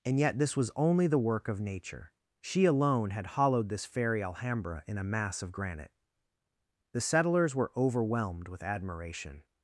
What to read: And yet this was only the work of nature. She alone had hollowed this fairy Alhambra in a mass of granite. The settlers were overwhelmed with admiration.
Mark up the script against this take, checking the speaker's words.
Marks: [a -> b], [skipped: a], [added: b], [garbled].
And yet this was only the work of nature. She alone had hollowed this fairy Alhambra in a mass of granite. The settlers were overwhelmed with admiration.